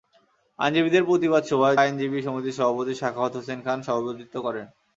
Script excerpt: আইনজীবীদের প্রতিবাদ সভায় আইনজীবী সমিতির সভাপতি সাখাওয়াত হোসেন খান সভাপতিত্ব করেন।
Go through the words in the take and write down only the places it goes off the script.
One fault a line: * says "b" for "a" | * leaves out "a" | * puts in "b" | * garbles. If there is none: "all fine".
all fine